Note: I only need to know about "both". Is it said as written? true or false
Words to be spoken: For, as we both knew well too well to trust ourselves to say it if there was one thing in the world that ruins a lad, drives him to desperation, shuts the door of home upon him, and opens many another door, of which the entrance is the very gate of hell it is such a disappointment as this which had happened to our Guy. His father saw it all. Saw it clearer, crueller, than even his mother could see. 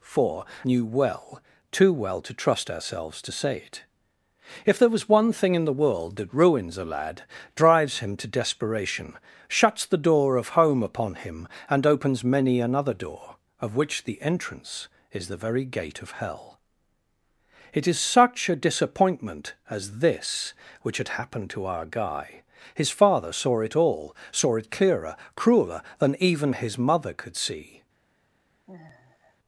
false